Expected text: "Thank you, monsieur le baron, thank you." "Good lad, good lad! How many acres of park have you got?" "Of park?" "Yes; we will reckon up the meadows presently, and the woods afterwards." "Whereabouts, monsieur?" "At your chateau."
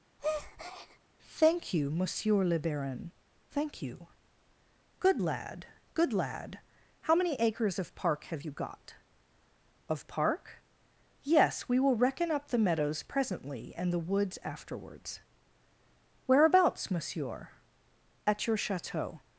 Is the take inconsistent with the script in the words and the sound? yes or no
yes